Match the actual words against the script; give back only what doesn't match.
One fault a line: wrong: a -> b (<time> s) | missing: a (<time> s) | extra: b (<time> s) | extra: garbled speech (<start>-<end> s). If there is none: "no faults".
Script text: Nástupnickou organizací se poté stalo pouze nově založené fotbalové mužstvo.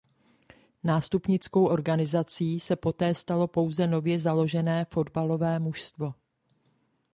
no faults